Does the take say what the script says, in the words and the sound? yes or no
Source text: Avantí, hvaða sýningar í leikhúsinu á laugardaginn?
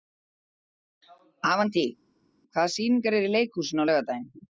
no